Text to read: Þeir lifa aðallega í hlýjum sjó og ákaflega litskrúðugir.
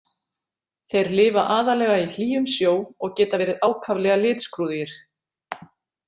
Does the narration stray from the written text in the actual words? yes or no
yes